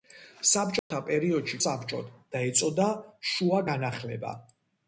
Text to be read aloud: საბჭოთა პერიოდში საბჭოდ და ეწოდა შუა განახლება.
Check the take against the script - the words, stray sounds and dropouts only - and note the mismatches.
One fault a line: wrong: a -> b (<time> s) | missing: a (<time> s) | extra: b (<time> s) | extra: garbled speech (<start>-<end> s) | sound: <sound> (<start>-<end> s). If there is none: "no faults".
sound: dropout (0.8-0.9 s)